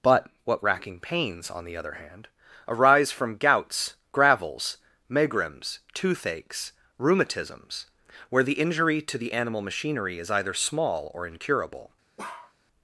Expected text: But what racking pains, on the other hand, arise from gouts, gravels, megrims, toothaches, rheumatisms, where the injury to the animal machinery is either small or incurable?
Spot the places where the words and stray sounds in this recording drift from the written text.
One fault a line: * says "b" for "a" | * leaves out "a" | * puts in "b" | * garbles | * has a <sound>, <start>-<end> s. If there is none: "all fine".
* has a bark, 12.2-12.5 s